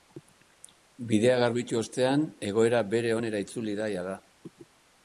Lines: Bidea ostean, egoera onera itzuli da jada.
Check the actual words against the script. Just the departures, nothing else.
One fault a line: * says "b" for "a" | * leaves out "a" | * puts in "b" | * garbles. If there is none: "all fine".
* puts in "garbitu"
* puts in "bere"